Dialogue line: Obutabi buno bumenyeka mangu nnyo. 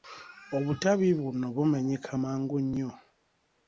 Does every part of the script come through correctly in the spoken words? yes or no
yes